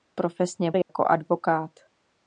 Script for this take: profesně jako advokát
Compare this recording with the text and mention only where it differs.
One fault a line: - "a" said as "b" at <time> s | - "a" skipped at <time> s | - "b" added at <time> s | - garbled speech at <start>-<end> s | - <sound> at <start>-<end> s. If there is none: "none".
- dropout at 0.8-0.9 s